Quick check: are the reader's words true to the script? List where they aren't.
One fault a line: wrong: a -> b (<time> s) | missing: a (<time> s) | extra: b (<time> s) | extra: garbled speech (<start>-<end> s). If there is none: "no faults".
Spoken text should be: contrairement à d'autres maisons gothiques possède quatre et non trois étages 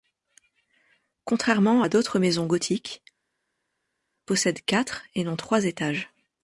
no faults